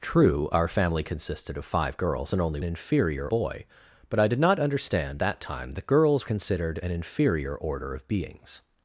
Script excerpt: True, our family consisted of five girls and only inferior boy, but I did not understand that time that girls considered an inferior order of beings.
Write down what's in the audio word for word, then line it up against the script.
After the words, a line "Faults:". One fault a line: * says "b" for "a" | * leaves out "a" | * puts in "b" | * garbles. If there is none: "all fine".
True, our family consisted of five girls and only inferior boy, but I did not understand that time that girls considered an inferior order of beings.
Faults:
all fine